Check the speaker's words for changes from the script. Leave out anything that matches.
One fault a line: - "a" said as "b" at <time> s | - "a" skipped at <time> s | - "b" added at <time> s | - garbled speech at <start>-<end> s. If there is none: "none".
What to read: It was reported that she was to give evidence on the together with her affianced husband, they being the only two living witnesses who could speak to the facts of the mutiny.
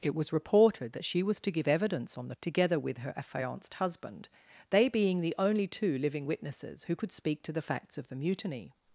none